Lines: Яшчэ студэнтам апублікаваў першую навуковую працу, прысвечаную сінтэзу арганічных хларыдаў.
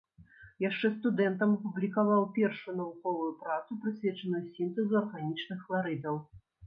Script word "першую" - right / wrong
right